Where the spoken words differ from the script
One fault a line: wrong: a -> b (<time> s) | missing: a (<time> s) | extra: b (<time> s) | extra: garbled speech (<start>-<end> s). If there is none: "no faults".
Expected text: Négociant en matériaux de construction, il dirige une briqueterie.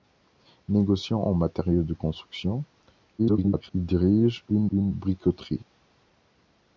extra: garbled speech (3.2-3.7 s)
extra: une (4.7 s)